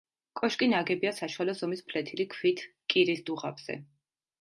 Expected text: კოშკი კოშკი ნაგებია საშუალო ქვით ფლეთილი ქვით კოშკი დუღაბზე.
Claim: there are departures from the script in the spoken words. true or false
true